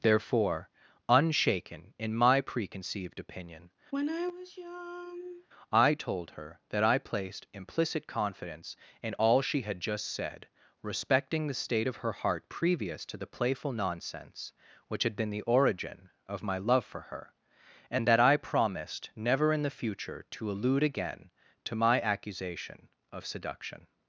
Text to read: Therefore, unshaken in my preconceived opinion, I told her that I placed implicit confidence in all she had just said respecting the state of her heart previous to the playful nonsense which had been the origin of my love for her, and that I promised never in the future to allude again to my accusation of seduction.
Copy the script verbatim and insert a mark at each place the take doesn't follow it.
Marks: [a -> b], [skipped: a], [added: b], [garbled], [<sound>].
Therefore, unshaken in my preconceived opinion, [sigh] I told her that I placed implicit confidence in all she had just said respecting the state of her heart previous to the playful nonsense which had been the origin of my love for her, and that I promised never in the future to allude again to my accusation of seduction.